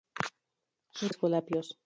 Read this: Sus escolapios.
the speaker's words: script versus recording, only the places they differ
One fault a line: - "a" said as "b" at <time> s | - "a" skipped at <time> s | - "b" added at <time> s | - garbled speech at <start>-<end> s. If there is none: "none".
none